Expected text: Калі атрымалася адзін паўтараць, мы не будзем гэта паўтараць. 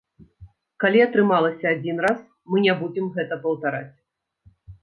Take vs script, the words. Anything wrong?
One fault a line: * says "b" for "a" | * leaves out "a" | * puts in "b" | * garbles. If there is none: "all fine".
* says "раз" for "паўтараць"